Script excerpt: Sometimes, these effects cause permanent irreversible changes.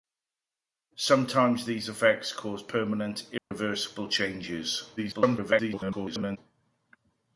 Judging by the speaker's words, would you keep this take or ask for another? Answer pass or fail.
fail